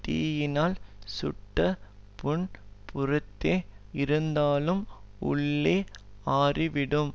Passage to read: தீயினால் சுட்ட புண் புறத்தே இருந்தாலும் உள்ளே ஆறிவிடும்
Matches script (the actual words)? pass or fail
pass